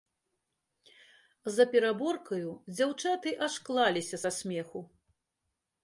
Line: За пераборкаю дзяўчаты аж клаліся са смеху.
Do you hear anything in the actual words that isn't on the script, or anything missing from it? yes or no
no